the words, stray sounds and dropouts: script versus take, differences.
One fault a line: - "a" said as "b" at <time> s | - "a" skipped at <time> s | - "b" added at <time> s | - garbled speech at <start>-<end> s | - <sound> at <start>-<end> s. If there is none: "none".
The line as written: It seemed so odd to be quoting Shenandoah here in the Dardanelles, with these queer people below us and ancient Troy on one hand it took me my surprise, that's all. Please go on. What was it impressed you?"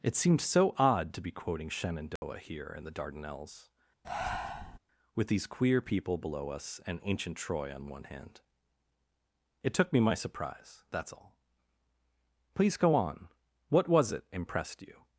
- dropout at 2.2-2.2 s
- breath at 4.0-4.8 s